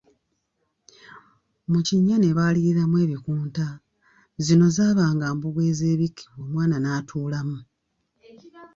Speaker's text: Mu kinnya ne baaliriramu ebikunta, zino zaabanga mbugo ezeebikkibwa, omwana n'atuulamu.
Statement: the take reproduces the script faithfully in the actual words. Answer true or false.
true